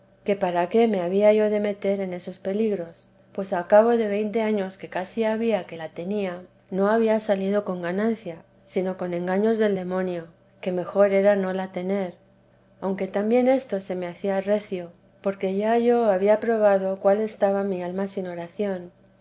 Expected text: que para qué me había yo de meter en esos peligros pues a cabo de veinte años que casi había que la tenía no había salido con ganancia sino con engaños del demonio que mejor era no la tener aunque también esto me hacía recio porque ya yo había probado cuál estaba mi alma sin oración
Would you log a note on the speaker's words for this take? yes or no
yes